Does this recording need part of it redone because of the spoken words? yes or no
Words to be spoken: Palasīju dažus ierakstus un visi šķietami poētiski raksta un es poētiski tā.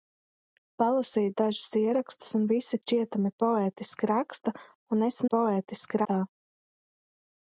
no